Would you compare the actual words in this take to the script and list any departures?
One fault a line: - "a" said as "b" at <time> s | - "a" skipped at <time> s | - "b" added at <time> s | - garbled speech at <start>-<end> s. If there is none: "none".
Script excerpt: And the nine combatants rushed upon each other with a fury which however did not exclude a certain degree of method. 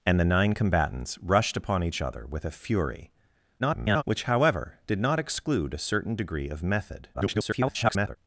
- garbled speech at 3.6-4.0 s
- garbled speech at 7.1-8.2 s